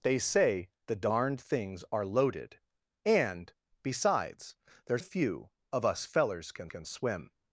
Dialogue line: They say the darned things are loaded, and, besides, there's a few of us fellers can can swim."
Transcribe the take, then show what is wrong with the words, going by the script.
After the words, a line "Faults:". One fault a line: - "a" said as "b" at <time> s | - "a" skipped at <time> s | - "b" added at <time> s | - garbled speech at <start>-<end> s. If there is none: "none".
They say the darned things are loaded, and, besides, there's a few of us fellers can can swim."
Faults:
none